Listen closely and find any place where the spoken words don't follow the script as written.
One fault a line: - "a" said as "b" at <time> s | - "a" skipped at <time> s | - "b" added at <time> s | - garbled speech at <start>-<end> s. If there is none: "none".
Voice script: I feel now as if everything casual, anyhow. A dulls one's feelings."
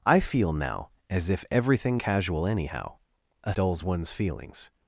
none